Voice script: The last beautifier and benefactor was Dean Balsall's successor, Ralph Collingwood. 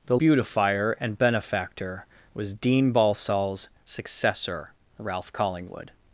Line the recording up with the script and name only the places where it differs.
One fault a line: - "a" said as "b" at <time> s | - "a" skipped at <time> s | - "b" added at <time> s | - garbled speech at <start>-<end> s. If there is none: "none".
- "last" skipped at 0.2 s